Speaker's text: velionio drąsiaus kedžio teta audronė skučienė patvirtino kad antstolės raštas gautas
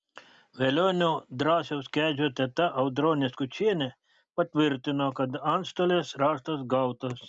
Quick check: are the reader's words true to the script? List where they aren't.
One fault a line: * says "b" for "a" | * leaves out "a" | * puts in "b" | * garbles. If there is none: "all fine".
all fine